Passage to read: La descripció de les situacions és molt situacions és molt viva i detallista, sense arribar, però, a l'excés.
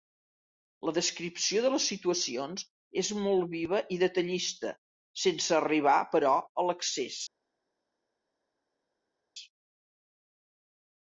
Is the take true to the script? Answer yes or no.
no